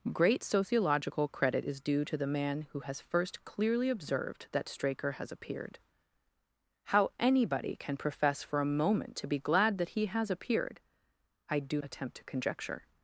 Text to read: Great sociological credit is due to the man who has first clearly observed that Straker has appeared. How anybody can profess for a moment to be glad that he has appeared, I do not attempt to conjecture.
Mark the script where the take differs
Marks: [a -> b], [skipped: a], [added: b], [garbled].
Great sociological credit is due to the man who has first clearly observed that Straker has appeared. How anybody can profess for a moment to be glad that he has appeared, I do [skipped: not] attempt to conjecture.